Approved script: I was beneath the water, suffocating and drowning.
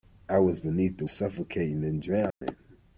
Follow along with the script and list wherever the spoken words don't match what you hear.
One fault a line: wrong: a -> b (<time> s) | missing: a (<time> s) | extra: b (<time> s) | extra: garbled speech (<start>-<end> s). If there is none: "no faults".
missing: water (1.1 s)